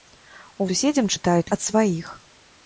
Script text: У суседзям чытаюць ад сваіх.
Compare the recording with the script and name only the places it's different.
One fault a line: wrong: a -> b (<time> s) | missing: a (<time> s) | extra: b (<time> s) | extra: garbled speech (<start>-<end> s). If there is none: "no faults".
no faults